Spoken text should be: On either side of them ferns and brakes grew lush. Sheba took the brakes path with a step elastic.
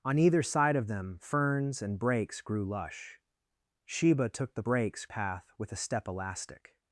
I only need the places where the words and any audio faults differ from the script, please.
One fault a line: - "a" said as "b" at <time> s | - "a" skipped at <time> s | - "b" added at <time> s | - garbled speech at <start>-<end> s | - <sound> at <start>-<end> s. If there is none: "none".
none